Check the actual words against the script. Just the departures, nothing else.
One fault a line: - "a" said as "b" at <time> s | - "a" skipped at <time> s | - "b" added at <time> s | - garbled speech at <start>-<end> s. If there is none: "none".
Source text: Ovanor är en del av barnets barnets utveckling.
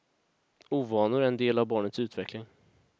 - "barnets" skipped at 2.0 s